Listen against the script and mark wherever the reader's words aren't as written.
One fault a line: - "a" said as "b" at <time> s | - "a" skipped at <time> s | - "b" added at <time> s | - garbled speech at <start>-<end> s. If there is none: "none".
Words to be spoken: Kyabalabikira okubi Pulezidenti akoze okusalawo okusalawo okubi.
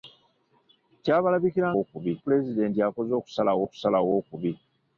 none